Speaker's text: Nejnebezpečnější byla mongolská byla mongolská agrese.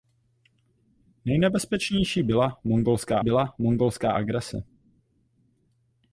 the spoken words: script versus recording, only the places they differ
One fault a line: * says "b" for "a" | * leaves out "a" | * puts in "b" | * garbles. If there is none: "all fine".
all fine